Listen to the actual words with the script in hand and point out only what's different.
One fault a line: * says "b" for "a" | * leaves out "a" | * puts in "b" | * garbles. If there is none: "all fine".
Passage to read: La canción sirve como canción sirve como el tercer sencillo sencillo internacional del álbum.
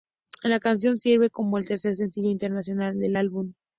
* leaves out "canción sirve como"
* leaves out "sencillo"